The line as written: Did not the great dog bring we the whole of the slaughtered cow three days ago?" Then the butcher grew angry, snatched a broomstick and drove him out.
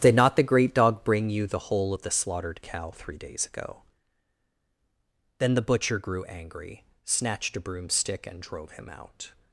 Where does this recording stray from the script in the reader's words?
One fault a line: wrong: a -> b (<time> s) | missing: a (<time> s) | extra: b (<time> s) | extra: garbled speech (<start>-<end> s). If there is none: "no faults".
wrong: we -> you (1.3 s)